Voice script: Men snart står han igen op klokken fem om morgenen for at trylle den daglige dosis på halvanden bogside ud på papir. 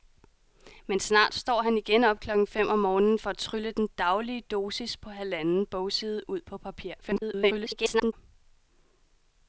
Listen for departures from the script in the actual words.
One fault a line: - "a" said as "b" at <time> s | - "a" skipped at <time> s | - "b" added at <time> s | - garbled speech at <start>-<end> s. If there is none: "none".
- garbled speech at 7.0-8.1 s